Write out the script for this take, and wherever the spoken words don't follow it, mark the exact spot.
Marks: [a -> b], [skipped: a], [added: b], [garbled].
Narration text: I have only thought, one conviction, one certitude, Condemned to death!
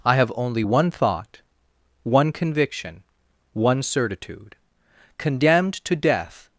I have only [added: one] thought, one conviction, one certitude, Condemned to death!